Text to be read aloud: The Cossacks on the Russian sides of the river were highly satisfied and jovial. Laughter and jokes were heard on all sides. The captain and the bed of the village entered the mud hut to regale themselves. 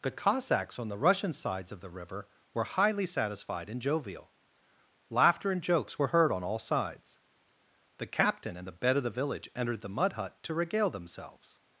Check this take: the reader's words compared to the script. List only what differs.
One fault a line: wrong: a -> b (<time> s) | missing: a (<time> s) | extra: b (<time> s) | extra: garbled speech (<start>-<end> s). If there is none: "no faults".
no faults